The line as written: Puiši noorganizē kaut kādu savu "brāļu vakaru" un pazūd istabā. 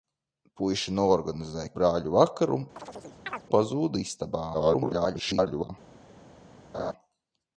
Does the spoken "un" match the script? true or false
false